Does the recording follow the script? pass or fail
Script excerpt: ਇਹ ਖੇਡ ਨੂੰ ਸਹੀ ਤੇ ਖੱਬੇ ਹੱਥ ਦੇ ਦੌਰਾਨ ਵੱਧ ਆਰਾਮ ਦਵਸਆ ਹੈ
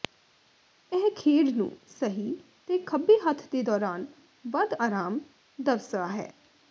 pass